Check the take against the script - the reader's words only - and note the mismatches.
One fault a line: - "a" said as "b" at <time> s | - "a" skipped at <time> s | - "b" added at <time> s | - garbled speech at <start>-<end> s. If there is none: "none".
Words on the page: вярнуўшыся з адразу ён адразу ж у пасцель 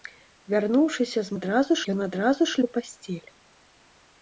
none